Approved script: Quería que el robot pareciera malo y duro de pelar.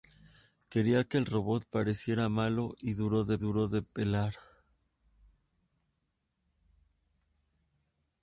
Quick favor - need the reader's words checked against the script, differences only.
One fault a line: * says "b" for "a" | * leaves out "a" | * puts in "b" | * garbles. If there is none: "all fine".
* puts in "duro de"